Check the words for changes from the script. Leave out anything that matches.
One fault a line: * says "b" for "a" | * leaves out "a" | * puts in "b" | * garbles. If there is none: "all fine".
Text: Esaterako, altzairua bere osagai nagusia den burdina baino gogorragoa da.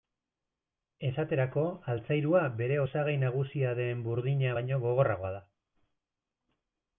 all fine